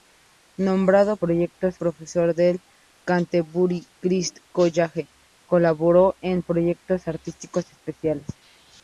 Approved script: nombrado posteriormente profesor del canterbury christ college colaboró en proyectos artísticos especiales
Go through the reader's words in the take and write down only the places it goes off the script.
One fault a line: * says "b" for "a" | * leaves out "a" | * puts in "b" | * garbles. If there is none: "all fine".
* says "proyectos" for "posteriormente"